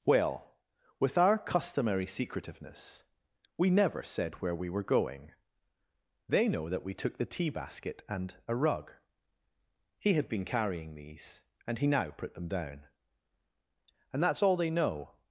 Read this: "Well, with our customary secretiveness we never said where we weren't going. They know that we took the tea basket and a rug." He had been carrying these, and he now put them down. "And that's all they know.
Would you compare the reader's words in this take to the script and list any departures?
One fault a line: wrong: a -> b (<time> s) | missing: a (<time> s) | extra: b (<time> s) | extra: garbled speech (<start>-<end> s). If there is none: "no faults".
wrong: weren't -> were (4.7 s)